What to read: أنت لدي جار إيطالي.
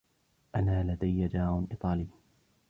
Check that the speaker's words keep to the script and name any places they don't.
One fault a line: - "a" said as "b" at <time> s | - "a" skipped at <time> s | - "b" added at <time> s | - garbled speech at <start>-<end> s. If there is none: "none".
- "أنت" said as "أنا" at 0.6 s